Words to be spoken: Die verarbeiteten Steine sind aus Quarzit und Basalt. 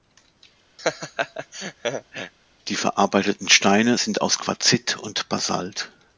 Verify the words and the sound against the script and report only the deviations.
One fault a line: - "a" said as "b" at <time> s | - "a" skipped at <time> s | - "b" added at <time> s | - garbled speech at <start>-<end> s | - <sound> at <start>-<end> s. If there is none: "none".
- laugh at 0.8-2.3 s